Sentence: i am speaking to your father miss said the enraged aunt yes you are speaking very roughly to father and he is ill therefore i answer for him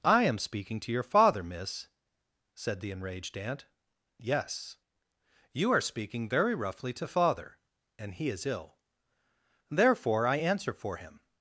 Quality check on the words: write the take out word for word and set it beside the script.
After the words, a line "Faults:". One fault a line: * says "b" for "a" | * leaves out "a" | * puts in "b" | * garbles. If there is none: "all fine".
i am speaking to your father miss said the enraged aunt yes you are speaking very roughly to father and he is ill therefore i answer for him
Faults:
all fine